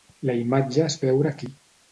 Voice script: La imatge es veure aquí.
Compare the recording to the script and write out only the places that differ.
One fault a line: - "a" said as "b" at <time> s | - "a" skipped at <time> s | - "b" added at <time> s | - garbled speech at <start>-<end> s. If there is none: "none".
none